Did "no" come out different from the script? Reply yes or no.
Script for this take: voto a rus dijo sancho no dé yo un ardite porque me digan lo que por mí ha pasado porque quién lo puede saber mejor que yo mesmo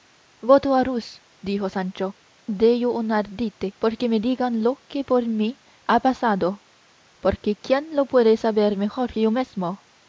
yes